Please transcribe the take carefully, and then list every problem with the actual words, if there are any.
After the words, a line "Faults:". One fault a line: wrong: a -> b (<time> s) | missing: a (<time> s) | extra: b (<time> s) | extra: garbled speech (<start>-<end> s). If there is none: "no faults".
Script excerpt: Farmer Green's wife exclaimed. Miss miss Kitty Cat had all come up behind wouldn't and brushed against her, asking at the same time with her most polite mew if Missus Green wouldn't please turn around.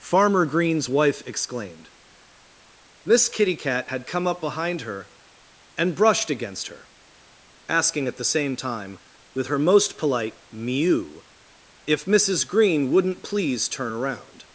Farmer Green's wife exclaimed. Miss Kitty Cat had come up behind her and brushed against her, asking at the same time with her most polite mew if Missus Green wouldn't please turn around.
Faults:
missing: miss (3.3 s)
missing: all (4.1 s)
wrong: wouldn't -> her (4.8 s)